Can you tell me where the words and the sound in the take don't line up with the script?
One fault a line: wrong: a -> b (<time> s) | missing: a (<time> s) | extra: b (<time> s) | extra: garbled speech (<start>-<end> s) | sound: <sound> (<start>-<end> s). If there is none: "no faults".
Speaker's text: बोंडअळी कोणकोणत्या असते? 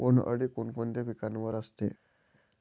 extra: पिकावर (1.0 s)